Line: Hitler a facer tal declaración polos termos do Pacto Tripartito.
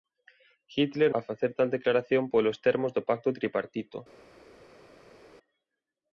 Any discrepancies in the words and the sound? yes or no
no